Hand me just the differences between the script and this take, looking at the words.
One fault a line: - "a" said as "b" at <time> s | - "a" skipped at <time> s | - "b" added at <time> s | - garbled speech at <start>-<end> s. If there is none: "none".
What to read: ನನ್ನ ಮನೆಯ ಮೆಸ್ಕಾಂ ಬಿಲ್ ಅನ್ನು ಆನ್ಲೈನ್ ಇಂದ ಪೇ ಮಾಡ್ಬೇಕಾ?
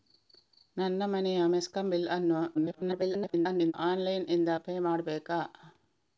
- garbled speech at 2.5-3.7 s